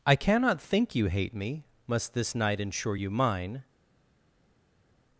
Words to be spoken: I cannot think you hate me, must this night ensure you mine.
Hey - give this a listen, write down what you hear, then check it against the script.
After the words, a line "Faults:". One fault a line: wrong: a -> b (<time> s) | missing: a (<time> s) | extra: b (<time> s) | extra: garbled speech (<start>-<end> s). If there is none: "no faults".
I cannot think you hate me, must this night ensure you mine.
Faults:
no faults